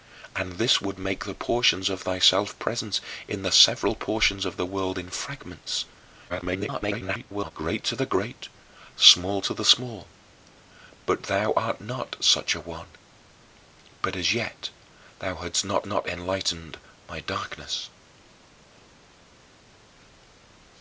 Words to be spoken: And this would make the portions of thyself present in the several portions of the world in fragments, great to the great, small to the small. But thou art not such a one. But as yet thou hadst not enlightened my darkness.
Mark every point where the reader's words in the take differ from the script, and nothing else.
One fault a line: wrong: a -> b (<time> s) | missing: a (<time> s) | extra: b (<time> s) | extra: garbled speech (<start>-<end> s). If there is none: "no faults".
extra: garbled speech (6.3-7.5 s)
extra: not (15.9 s)